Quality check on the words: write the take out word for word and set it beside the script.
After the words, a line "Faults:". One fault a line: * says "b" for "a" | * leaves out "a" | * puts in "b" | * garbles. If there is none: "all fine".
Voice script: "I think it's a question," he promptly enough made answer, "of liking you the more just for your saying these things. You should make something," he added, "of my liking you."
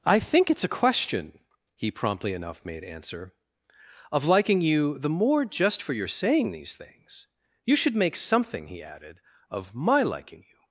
"I think it's a question," he promptly enough made answer, "of liking you the more just for your saying these things. You should make something," he added, "of my liking you."
Faults:
all fine